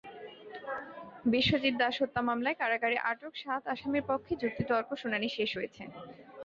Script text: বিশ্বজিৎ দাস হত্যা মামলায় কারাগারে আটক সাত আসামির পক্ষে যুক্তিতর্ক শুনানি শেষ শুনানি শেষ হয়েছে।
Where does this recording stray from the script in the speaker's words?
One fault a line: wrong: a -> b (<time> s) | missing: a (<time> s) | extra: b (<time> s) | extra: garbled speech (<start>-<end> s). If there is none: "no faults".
missing: শুনানি শেষ (5.5 s)